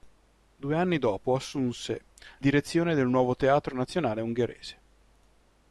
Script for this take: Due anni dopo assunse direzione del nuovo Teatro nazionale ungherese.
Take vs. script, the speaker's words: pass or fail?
pass